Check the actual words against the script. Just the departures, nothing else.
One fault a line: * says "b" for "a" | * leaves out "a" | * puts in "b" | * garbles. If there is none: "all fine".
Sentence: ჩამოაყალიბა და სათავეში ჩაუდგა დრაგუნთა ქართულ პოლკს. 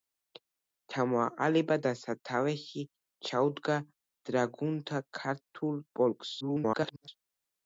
* garbles